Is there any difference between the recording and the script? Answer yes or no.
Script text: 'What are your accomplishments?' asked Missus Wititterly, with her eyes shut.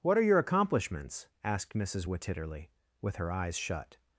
no